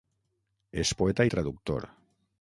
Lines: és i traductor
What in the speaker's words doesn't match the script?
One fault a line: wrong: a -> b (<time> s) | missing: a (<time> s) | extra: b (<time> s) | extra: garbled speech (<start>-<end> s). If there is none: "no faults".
extra: poeta (1.0 s)